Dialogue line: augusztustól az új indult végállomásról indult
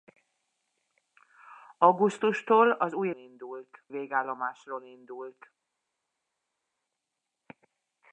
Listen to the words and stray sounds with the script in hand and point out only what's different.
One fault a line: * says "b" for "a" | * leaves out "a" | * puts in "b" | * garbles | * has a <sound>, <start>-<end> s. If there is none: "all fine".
all fine